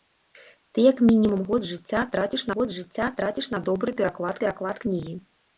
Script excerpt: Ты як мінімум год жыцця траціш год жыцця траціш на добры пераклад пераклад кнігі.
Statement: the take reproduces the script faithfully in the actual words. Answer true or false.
true